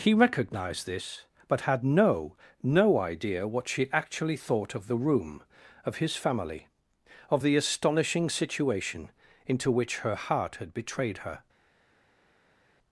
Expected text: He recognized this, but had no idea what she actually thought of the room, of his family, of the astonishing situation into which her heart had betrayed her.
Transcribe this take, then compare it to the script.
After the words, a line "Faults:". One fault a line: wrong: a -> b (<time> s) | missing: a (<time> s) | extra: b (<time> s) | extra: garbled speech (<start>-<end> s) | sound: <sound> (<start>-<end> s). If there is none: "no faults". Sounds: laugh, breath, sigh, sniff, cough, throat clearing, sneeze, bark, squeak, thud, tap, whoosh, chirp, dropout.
He recognized this, but had no no idea what she actually thought of the room, of his family, of the astonishing situation into which her heart had betrayed her.
Faults:
extra: no (2.6 s)